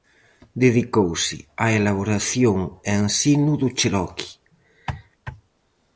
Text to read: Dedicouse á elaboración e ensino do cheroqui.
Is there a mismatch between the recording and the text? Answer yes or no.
no